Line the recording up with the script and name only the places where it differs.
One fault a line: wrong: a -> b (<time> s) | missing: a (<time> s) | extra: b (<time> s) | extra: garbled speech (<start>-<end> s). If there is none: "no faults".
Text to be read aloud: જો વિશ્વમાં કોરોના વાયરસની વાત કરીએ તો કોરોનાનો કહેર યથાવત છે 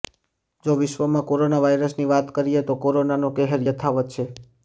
no faults